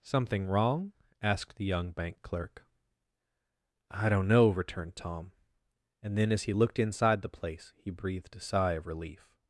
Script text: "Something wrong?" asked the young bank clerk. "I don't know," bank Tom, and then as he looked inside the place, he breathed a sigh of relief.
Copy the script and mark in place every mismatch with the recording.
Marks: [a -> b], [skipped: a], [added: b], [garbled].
"Something wrong?" asked the young bank clerk. "I don't know," [bank -> returned] Tom, and then as he looked inside the place, he breathed a sigh of relief.